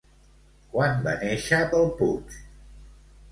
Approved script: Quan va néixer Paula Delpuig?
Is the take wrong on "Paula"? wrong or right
wrong